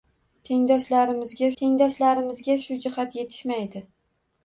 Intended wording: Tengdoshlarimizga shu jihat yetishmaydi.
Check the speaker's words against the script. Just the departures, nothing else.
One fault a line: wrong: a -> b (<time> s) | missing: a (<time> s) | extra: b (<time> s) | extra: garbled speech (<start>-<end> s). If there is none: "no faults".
extra: tengdoshlarimizga (1.6 s)